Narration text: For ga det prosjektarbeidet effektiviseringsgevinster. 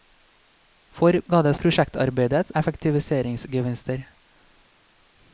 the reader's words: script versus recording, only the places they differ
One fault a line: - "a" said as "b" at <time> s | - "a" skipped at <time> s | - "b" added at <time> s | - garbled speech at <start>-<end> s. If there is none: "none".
none